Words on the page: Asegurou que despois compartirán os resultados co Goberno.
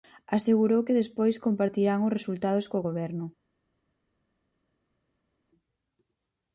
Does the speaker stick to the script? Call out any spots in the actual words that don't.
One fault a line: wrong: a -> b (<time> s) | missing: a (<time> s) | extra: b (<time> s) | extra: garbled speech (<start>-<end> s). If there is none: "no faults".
no faults